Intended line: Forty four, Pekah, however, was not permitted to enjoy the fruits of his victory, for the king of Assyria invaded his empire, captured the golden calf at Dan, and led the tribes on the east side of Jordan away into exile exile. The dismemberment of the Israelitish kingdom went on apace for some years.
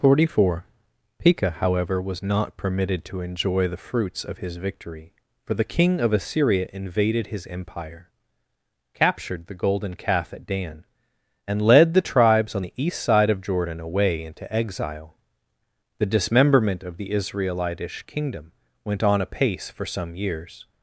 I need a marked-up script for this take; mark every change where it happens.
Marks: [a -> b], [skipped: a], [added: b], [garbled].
Forty four, Pekah, however, was not permitted to enjoy the fruits of his victory, for the king of Assyria invaded his empire, captured the golden calf at Dan, and led the tribes on the east side of Jordan away into exile [skipped: exile.] The dismemberment of the Israelitish kingdom went on apace for some years.